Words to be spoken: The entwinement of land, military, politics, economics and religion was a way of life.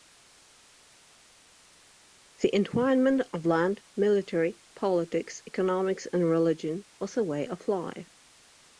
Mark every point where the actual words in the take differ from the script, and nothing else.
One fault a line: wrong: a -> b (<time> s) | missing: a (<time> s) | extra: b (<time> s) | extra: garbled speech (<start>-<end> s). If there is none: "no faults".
no faults